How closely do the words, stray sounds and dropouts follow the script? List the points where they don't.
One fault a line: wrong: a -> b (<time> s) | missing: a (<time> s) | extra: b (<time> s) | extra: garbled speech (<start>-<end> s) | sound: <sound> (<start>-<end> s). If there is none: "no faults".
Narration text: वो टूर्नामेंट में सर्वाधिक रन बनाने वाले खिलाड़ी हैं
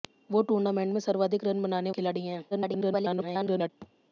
missing: वाले (1.9 s)
extra: garbled speech (2.5-3.7 s)
sound: thud (3.8-3.9 s)